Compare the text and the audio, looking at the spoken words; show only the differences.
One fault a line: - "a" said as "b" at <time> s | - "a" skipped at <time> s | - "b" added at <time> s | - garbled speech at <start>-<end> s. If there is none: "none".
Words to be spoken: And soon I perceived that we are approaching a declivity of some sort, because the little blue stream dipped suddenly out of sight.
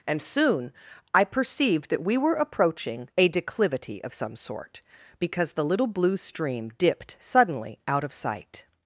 - "are" said as "were" at 2.2 s